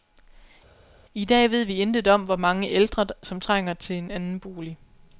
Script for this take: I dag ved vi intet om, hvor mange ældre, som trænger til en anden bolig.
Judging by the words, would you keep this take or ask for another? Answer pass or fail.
pass